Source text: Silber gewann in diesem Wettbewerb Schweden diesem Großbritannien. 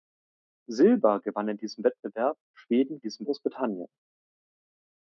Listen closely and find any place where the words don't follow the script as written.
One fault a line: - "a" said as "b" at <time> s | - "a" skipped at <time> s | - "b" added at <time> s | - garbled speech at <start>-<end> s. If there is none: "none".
none